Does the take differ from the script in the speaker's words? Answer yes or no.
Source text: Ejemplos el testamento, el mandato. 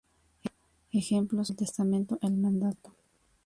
no